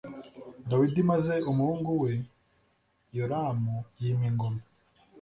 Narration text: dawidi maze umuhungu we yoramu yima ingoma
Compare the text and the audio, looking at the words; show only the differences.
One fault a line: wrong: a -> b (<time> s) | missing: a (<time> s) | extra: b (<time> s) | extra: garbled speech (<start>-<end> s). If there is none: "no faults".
no faults